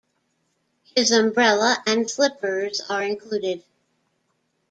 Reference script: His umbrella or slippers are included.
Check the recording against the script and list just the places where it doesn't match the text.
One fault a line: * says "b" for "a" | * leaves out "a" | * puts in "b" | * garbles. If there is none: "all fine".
* says "and" for "or"